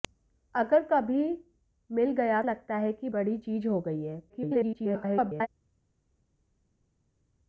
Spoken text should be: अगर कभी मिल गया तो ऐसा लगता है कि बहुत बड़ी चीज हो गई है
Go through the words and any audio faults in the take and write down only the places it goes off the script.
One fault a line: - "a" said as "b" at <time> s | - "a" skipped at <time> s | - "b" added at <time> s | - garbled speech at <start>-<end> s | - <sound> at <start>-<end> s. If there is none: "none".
- "तो ऐसा" skipped at 2.4 s
- "बहुत" skipped at 3.1 s
- garbled speech at 4.3-5.5 s